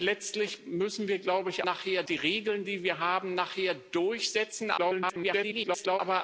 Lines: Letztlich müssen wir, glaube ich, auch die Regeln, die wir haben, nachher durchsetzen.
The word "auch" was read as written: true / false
false